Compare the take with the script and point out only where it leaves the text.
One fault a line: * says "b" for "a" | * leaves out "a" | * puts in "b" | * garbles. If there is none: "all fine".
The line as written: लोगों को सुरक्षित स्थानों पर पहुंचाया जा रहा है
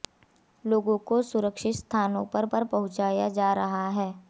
* puts in "पर"